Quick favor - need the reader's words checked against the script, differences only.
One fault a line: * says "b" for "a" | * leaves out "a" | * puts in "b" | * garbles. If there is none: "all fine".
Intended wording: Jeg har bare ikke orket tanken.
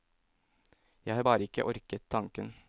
all fine